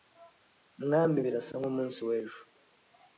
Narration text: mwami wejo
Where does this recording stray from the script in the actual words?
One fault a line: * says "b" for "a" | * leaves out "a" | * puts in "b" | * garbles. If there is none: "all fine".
* puts in "birasa nk'umunsi"